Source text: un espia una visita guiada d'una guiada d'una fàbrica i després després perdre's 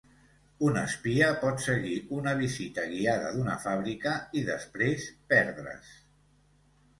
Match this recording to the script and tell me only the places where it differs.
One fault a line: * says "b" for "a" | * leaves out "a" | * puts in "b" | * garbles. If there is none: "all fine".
* puts in "pot seguir"
* leaves out "guiada d'una"
* leaves out "després"